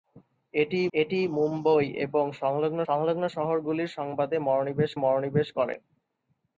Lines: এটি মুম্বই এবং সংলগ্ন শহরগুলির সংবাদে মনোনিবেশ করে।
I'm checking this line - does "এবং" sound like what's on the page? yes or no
yes